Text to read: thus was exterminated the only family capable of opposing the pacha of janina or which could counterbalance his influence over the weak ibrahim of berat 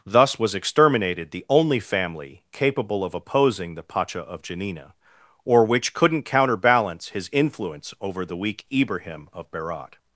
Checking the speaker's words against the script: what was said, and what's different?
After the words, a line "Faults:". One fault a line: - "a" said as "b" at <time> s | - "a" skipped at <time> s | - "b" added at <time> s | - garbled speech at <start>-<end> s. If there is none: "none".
thus was exterminated the only family capable of opposing the pacha of janina or which couldn't counterbalance his influence over the weak ibrahim of berat
Faults:
- "could" said as "couldn't" at 5.9 s